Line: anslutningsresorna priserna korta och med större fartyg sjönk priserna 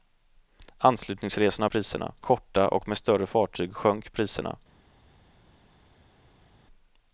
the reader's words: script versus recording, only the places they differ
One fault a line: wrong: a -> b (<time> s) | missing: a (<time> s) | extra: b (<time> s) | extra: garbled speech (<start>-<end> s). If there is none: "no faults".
no faults